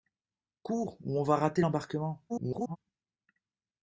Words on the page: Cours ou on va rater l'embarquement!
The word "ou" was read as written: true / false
true